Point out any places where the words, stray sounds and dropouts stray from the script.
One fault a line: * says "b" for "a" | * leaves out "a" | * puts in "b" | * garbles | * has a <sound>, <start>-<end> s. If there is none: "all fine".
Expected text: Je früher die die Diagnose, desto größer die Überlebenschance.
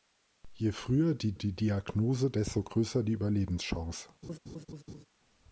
* has a laugh, 4.2-5.0 s